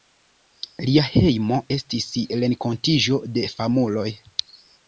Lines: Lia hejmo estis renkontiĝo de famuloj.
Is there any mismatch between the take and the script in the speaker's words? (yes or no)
no